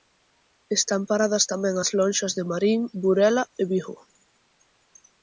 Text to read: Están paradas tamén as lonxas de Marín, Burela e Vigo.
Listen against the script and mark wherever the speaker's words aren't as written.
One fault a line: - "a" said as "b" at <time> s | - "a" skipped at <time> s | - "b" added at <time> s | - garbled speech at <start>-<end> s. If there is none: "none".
none